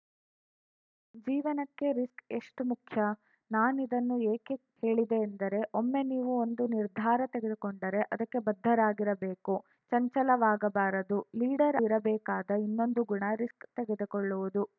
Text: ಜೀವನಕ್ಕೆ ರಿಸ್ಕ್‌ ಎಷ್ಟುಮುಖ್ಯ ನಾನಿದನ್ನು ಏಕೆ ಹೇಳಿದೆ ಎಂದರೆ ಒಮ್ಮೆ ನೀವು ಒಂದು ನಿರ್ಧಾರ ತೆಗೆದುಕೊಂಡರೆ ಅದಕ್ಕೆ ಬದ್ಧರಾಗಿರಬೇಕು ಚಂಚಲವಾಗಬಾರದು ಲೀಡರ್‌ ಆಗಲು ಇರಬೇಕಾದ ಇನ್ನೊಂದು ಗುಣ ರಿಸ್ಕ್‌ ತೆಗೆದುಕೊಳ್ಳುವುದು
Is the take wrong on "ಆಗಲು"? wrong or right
wrong